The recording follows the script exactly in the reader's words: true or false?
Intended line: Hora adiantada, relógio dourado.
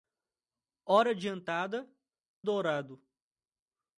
false